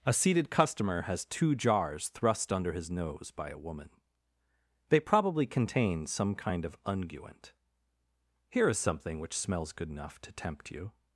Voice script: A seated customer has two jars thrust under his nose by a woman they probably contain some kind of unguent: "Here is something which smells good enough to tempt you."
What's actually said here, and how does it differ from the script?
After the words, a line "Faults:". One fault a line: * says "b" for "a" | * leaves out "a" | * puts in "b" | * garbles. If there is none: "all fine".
A seated customer has two jars thrust under his nose by a woman they probably contain some kind of unguent: "Here is something which smells good enough to tempt you."
Faults:
all fine